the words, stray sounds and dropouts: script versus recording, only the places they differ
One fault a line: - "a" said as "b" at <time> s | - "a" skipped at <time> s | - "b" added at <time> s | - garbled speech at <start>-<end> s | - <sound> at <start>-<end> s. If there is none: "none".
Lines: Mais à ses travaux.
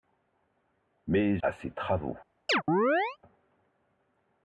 - chirp at 2.5-3.2 s